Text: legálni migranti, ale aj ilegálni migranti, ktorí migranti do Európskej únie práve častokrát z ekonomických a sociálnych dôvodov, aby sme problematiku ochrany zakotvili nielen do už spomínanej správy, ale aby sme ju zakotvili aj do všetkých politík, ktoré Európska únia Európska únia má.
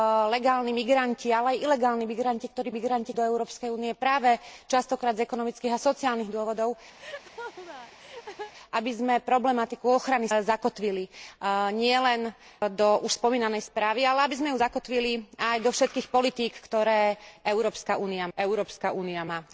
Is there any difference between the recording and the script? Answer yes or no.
no